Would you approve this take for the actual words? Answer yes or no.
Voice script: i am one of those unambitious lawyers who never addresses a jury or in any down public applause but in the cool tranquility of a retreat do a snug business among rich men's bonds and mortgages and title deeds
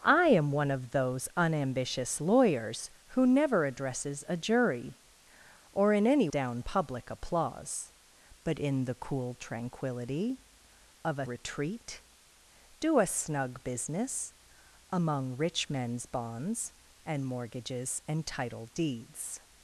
yes